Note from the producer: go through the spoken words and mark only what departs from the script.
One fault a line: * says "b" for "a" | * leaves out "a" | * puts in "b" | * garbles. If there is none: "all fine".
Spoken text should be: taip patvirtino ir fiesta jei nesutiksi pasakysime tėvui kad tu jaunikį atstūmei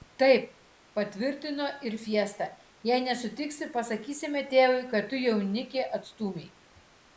all fine